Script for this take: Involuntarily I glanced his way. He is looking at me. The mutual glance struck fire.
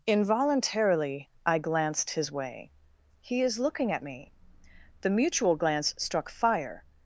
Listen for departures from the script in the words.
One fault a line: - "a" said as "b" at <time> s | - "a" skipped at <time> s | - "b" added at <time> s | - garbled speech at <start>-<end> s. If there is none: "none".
none